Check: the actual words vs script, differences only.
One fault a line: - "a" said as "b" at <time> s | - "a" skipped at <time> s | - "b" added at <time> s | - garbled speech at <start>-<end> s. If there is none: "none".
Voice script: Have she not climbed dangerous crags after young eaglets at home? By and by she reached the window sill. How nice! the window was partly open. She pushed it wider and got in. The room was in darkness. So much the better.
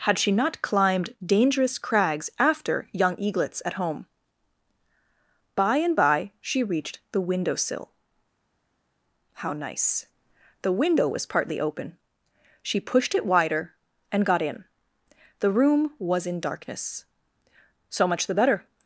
- "Have" said as "Had" at 0.1 s